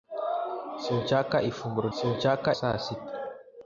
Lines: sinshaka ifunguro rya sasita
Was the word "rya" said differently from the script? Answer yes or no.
yes